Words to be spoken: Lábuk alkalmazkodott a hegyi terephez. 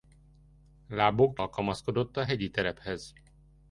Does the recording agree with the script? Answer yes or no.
yes